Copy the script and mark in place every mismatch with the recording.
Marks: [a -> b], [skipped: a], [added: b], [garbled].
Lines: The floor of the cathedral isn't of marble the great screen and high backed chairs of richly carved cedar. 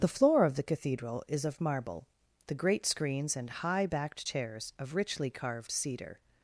The floor of the cathedral [isn't -> is] of marble the great [screen -> screens] and high backed chairs of richly carved cedar.